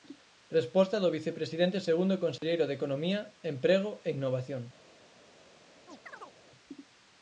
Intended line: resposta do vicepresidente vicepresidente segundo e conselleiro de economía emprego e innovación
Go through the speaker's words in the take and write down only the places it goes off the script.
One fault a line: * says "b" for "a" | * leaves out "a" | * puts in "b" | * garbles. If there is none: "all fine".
* leaves out "vicepresidente"